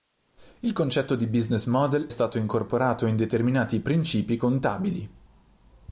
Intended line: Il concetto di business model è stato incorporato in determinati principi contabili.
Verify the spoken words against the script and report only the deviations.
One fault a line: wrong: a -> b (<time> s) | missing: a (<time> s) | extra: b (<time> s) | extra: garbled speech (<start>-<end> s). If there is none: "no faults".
missing: è (2.1 s)